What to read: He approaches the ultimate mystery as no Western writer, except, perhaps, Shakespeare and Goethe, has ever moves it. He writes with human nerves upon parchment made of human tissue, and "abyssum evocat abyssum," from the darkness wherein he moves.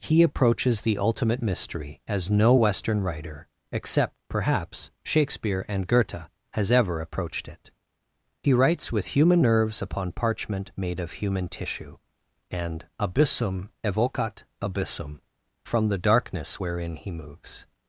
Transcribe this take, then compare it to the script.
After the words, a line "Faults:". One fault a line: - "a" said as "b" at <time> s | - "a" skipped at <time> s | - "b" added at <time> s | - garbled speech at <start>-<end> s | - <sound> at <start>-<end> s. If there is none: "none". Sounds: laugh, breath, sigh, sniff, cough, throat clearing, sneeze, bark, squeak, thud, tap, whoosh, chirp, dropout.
He approaches the ultimate mystery as no Western writer, except, perhaps, Shakespeare and Goethe, has ever approached it. He writes with human nerves upon parchment made of human tissue, and "abyssum evocat abyssum," from the darkness wherein he moves.
Faults:
- "moves" said as "approached" at 7.0 s